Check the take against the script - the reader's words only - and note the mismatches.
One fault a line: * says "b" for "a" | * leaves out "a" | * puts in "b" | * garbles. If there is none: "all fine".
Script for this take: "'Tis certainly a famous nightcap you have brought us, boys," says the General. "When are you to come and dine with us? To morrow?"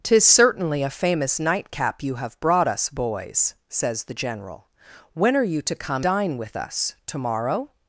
* leaves out "and"